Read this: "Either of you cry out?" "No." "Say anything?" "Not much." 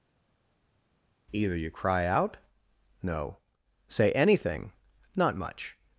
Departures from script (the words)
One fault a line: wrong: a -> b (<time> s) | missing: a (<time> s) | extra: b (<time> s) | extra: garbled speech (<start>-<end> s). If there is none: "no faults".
missing: of (1.6 s)